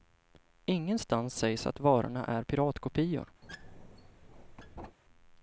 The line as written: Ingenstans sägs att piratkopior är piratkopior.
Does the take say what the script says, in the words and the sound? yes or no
no